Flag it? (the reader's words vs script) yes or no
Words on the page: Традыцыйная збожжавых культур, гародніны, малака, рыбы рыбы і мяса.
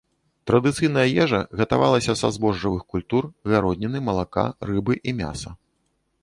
yes